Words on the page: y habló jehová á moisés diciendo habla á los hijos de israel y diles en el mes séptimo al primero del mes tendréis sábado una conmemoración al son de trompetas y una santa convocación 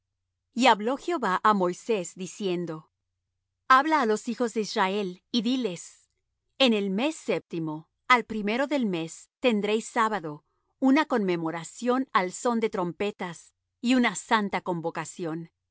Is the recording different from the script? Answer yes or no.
no